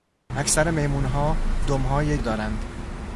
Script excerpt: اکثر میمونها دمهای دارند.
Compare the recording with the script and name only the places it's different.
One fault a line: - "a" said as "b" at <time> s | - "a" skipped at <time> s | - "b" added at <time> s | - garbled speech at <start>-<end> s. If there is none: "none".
none